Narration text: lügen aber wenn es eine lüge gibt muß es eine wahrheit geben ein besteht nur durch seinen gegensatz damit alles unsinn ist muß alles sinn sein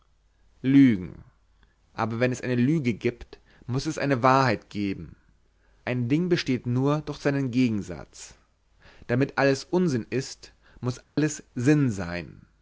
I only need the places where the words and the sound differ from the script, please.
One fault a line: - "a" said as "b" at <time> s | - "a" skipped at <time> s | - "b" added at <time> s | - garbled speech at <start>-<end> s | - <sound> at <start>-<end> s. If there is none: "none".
- "ding" added at 6.1 s
- dropout at 11.0-11.2 s